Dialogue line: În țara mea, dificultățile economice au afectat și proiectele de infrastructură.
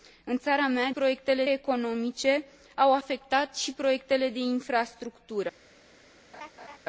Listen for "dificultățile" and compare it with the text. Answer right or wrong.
wrong